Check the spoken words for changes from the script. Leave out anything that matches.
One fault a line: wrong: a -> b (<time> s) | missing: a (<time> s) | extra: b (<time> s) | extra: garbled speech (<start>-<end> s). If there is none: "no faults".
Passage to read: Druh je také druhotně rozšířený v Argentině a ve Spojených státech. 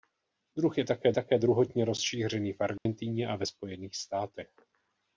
extra: také (1.1 s)